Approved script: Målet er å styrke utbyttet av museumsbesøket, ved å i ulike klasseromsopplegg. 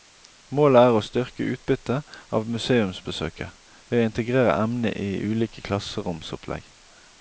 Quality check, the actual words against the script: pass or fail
fail